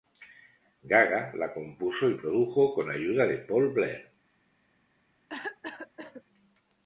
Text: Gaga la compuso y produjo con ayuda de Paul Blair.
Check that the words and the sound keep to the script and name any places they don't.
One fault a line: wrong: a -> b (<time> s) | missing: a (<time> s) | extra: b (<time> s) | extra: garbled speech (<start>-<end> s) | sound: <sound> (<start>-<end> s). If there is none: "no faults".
sound: cough (5.3-6.2 s)